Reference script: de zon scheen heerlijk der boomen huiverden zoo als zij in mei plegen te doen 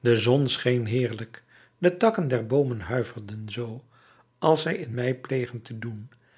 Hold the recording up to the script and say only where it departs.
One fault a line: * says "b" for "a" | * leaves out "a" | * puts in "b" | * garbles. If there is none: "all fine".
* puts in "de takken"